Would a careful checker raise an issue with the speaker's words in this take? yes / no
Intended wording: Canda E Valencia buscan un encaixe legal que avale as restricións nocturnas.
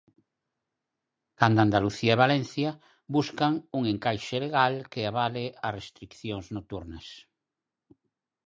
yes